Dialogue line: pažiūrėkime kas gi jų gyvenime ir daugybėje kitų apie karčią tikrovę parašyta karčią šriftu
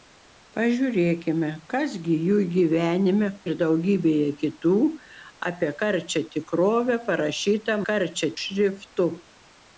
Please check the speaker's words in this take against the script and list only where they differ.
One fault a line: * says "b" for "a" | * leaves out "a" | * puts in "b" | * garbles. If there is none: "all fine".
all fine